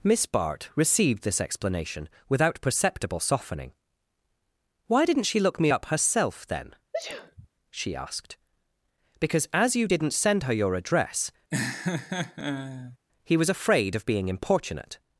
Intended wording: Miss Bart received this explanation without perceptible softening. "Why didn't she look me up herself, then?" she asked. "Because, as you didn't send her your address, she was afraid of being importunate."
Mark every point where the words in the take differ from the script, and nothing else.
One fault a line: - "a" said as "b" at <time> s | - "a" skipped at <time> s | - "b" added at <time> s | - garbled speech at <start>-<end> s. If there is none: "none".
- "she" said as "he" at 13.2 s